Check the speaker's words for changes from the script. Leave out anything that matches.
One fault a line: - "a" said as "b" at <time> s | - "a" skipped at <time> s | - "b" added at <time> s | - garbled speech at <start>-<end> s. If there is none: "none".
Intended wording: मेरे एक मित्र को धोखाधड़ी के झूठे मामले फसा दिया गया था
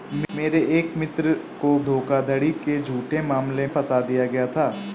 none